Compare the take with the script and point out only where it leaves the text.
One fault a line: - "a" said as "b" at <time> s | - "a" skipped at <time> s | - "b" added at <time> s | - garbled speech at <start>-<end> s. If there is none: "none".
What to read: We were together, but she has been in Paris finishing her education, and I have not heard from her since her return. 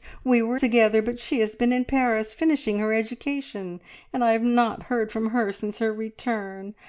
none